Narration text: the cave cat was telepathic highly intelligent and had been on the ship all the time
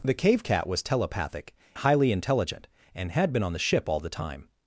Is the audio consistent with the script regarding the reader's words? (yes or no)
yes